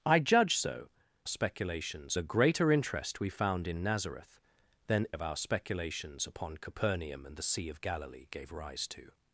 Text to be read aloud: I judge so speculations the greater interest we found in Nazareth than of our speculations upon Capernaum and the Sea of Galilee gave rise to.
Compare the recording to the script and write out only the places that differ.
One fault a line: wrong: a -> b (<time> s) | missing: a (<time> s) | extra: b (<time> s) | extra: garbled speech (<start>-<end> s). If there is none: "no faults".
no faults